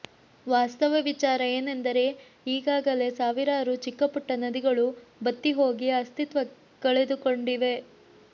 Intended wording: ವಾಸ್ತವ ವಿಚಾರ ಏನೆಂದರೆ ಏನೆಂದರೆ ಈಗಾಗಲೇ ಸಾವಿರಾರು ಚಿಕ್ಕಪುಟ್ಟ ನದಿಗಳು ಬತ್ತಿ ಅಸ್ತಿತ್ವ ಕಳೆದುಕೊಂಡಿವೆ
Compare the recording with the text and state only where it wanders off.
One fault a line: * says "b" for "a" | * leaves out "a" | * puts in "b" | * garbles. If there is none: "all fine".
* leaves out "ಏನೆಂದರೆ"
* puts in "ಹೋಗಿ"